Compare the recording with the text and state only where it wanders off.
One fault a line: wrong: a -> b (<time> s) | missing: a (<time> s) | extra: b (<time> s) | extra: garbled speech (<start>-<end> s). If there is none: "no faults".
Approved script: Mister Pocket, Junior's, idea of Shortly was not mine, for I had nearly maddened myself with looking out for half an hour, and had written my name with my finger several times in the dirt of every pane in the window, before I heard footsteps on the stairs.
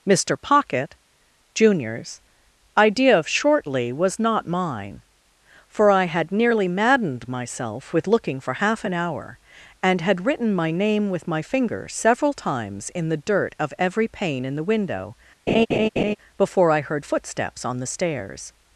missing: out (8.4 s)